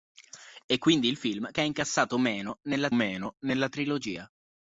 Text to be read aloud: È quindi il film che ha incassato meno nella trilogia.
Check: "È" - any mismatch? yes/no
no